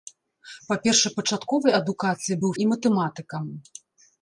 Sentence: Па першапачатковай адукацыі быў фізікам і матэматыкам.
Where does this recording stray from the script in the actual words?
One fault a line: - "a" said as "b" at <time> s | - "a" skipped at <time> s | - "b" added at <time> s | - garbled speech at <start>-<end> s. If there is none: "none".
- "фізікам" skipped at 2.5 s